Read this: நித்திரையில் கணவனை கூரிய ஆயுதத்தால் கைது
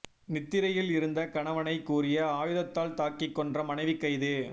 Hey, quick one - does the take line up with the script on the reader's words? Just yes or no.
no